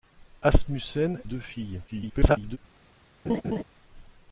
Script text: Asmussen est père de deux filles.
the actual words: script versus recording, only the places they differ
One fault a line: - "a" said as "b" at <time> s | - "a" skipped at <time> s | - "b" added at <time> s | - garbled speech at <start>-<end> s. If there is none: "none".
- "est père de" skipped at 1.2 s
- garbled speech at 1.9-2.6 s